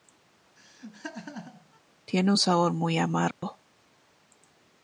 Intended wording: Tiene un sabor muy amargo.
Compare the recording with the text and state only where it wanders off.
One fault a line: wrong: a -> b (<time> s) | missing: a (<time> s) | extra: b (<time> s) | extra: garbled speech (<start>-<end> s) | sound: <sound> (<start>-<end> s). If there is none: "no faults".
sound: laugh (0.6-1.8 s)
sound: dropout (3.3-3.4 s)